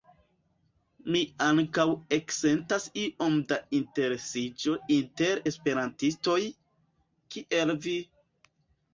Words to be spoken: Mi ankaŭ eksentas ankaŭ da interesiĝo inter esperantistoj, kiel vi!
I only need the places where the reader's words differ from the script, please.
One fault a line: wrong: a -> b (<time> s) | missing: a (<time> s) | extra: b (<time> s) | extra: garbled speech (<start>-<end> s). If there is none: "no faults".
wrong: ankaŭ -> iom (3.0 s)